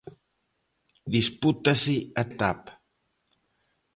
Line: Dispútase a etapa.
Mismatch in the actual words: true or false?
false